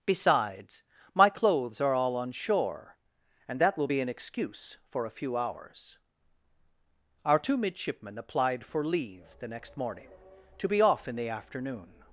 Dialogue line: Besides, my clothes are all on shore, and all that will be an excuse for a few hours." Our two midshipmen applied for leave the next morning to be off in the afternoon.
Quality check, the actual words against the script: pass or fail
fail